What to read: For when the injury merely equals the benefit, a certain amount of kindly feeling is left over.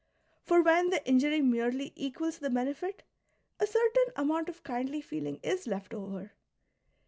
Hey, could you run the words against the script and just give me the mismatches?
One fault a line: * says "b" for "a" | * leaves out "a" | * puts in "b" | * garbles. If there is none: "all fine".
all fine